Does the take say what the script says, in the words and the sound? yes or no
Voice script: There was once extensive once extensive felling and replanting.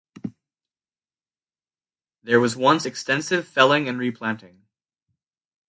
no